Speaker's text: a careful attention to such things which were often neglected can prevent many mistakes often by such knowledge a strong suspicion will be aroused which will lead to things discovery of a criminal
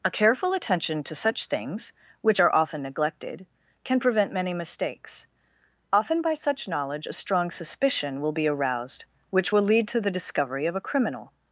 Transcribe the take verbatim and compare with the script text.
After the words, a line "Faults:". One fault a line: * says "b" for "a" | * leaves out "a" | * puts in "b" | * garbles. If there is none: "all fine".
a careful attention to such things which are often neglected can prevent many mistakes often by such knowledge a strong suspicion will be aroused which will lead to the discovery of a criminal
Faults:
* says "are" for "were"
* says "the" for "things"